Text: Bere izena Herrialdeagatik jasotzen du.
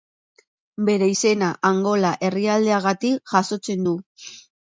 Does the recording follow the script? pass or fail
fail